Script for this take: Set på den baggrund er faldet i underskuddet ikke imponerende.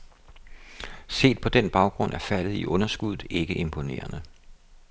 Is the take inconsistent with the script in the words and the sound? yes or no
no